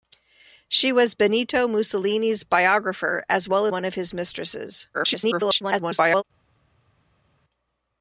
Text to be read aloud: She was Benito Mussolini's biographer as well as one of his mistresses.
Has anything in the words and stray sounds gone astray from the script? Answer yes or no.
yes